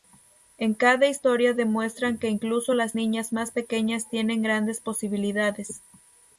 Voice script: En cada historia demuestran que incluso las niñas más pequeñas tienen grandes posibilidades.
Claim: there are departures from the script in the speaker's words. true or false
false